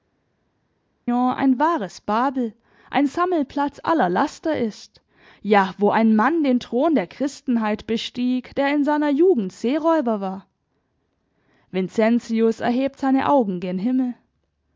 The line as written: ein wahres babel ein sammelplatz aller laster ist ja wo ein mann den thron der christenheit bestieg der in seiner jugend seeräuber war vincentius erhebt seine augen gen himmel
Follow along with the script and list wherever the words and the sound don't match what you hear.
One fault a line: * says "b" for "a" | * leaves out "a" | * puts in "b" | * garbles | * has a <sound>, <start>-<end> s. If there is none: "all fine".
all fine